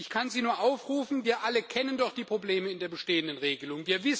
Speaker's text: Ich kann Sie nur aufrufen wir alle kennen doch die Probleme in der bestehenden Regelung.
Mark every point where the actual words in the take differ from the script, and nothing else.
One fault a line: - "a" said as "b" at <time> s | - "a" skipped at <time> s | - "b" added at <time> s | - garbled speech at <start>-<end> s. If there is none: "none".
none